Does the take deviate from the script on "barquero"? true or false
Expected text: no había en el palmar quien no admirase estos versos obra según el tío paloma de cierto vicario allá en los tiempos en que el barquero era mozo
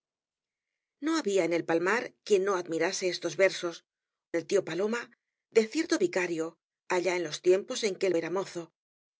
true